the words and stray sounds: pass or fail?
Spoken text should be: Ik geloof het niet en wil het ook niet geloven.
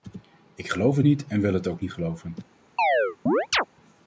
fail